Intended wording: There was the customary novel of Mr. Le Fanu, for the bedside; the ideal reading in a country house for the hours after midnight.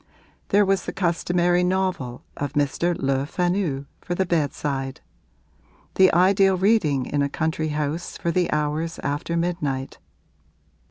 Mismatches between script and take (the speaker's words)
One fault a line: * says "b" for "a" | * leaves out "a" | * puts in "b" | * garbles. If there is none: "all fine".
all fine